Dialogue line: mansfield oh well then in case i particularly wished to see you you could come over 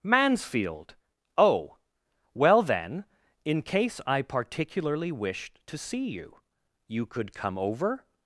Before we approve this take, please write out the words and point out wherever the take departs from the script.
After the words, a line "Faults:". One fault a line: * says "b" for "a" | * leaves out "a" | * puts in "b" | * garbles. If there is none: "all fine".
mansfield oh well then in case i particularly wished to see you you could come over
Faults:
all fine